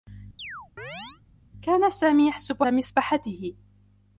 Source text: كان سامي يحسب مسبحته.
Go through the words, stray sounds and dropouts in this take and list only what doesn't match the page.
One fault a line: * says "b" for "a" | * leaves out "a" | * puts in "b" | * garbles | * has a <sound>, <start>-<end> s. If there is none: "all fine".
* has a chirp, 0.4-1.2 s